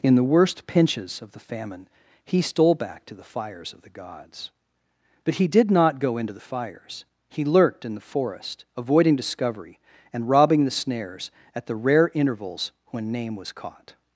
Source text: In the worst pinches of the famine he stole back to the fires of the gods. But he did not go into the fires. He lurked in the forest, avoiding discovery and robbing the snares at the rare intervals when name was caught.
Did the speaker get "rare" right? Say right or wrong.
right